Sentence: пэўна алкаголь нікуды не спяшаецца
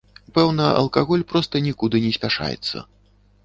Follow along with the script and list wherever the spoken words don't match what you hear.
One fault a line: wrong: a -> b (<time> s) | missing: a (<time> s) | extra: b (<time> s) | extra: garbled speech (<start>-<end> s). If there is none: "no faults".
extra: проста (1.3 s)